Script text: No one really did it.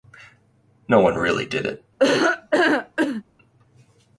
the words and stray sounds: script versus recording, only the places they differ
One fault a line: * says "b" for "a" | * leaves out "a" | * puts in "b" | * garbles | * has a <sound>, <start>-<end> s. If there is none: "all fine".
* has a laugh, 2.0-3.2 s